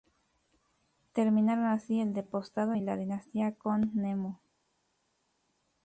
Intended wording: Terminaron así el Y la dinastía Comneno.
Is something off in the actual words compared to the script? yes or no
yes